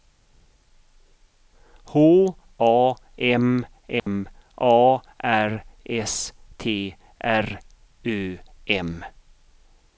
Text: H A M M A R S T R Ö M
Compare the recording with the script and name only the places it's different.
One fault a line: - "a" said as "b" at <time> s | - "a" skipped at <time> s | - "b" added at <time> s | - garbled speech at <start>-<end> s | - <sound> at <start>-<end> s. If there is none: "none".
- dropout at 4.0-4.1 s